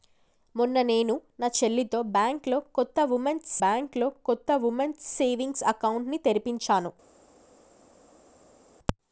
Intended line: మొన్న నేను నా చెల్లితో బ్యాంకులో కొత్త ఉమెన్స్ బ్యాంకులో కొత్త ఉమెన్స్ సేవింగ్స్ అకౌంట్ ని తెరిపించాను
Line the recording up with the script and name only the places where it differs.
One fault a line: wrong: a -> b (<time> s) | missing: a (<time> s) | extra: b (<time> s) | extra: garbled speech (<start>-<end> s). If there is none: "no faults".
no faults